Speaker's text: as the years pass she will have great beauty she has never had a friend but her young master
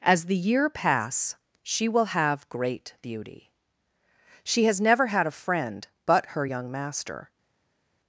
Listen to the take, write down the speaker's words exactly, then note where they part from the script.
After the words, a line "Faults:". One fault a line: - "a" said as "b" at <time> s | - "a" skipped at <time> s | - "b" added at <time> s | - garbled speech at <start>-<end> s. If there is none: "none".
as the year pass she will have great beauty she has never had a friend but her young master
Faults:
- "years" said as "year" at 0.3 s